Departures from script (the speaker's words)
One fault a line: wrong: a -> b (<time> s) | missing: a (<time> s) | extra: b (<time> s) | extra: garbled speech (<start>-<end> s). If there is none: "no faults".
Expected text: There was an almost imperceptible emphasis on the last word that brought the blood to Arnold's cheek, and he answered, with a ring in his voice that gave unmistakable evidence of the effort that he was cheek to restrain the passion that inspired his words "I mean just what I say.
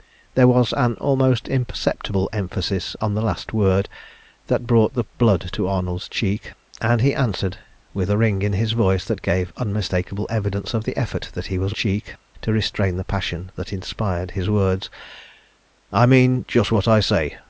no faults